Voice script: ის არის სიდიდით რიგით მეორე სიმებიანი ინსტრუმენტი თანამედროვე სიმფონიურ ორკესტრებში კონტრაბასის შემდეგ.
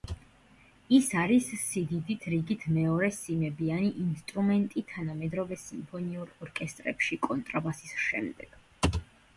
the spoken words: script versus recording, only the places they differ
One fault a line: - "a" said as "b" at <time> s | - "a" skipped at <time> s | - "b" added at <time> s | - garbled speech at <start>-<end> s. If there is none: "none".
none